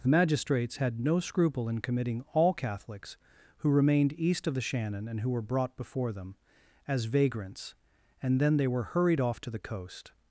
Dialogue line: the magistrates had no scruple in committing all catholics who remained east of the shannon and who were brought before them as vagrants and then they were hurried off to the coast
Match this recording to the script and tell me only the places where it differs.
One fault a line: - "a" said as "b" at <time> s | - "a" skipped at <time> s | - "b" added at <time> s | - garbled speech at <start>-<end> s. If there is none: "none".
none